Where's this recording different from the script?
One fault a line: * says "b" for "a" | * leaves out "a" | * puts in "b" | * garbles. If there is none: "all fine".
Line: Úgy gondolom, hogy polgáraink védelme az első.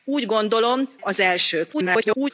* leaves out "hogy polgáraink védelme"
* garbles